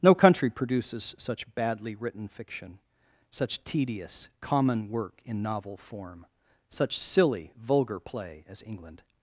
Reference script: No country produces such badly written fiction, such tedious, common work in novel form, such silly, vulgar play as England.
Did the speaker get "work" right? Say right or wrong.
right